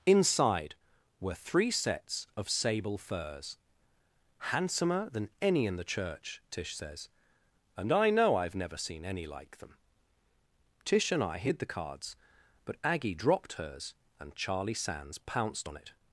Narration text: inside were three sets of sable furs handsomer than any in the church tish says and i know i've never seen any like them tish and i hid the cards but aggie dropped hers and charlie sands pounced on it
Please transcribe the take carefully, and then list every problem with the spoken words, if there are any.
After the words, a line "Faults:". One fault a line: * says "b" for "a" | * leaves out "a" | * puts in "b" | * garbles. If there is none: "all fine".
inside were three sets of sable furs handsomer than any in the church tish says and i know i've never seen any like them tish and i hid the cards but aggie dropped hers and charlie sands pounced on it
Faults:
all fine